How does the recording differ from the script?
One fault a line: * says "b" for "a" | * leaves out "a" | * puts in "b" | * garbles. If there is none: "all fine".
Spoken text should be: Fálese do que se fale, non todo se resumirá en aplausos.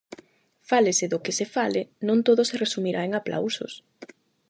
all fine